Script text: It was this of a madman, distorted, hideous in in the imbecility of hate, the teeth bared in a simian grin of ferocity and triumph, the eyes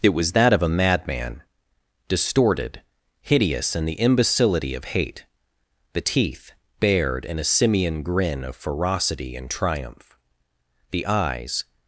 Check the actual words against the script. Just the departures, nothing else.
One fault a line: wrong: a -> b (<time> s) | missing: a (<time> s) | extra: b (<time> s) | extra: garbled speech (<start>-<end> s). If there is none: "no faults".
wrong: this -> that (0.3 s)
missing: in (3.9 s)